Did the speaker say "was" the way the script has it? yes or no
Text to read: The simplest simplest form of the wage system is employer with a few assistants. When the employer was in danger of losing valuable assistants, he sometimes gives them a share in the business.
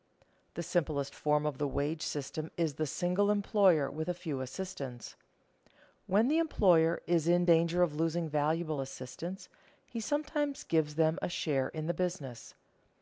no